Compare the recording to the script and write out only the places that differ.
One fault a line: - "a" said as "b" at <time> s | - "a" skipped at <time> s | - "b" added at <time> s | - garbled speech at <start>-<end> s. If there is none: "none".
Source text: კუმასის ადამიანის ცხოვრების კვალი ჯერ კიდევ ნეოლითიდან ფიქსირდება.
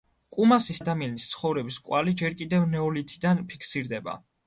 none